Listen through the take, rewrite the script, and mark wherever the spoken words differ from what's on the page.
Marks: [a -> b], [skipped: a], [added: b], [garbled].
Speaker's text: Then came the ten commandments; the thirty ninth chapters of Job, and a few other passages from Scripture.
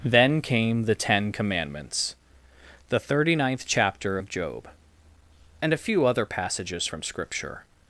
Then came the ten commandments; the thirty ninth [chapters -> chapter] of Job, and a few other passages from Scripture.